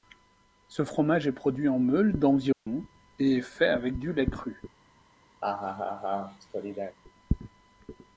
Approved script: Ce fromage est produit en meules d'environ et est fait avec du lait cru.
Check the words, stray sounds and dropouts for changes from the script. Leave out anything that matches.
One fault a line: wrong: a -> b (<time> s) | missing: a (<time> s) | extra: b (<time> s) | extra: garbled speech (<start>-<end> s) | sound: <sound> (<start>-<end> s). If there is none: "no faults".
sound: dropout (2.5-2.7 s)
sound: laugh (5.4-7.0 s)